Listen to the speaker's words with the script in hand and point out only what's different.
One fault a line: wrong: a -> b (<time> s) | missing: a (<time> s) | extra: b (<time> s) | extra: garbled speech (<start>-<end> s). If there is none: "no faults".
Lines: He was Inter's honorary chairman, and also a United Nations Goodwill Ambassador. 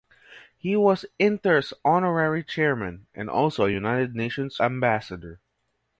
missing: Goodwill (4.6 s)